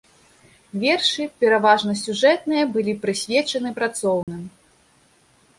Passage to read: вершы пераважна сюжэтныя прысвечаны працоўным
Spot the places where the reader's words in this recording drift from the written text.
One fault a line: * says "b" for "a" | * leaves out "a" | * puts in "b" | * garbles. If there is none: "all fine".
* puts in "былі"